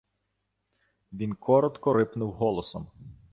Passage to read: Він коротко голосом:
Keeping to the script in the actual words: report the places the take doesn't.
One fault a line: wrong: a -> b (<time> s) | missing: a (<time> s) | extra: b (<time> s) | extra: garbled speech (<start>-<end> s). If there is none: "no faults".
extra: рипнув (1.9 s)